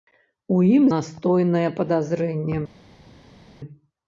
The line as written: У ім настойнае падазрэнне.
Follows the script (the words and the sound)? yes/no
yes